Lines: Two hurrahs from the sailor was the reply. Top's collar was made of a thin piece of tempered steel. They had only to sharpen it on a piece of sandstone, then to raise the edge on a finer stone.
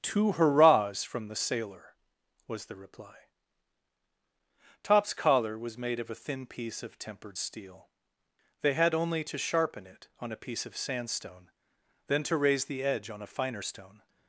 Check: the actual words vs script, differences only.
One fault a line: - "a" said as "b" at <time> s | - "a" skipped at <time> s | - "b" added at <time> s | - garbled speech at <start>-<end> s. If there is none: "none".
none